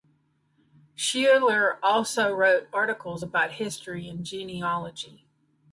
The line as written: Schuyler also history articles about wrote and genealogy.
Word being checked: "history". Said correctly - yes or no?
no